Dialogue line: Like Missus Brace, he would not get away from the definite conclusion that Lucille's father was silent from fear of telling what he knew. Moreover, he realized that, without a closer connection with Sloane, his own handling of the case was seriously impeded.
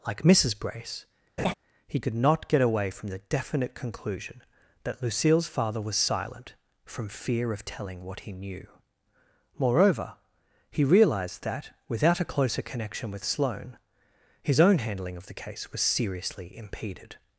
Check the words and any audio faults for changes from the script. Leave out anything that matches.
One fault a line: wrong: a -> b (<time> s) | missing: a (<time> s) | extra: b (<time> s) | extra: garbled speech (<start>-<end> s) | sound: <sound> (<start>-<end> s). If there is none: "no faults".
sound: laugh (1.4-1.5 s)
wrong: would -> could (2.0 s)